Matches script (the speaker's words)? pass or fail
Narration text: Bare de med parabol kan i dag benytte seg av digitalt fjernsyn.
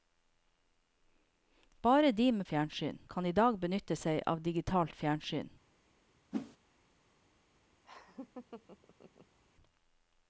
fail